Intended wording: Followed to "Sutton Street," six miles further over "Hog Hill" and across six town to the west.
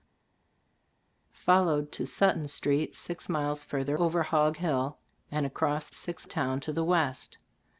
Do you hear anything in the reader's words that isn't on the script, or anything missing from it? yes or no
no